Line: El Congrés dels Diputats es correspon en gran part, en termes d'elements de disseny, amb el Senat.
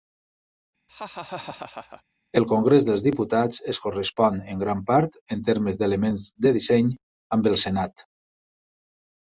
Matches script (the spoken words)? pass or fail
pass